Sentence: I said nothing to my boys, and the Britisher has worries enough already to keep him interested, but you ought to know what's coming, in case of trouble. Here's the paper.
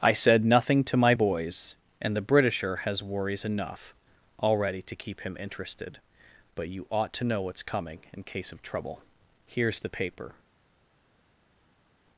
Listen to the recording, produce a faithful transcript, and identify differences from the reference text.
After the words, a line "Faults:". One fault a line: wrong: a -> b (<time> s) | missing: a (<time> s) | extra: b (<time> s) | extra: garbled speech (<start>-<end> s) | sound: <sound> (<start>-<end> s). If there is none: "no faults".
I said nothing to my boys, and the Britisher has worries enough already to keep him interested, but you ought to know what's coming, in case of trouble. Here's the paper.
Faults:
no faults